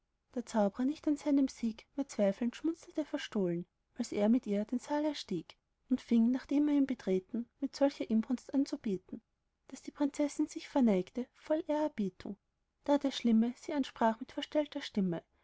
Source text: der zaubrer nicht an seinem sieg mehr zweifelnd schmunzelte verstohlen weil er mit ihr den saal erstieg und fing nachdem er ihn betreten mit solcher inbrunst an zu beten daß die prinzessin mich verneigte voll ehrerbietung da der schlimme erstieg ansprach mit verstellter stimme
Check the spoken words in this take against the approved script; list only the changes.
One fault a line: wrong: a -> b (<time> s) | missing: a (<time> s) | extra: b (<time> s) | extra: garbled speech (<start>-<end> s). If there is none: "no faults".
wrong: weil -> als (4.0 s)
wrong: mich -> sich (10.5 s)
wrong: erstieg -> sie (13.6 s)